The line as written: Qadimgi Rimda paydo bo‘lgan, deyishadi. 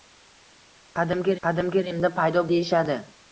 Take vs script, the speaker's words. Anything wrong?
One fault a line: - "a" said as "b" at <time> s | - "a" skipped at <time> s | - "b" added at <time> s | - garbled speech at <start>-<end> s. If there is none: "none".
- "qadimgi" added at 1.5 s
- "bo‘lgan" skipped at 2.4 s